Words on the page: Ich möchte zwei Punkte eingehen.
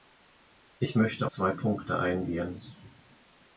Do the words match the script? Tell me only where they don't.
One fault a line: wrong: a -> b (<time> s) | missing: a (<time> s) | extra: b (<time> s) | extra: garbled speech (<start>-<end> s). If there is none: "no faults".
no faults